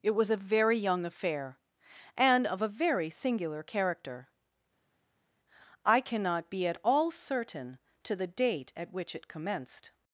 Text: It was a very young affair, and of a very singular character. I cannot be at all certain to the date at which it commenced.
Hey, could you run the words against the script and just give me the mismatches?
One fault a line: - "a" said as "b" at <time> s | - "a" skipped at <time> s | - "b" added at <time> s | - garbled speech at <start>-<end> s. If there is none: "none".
none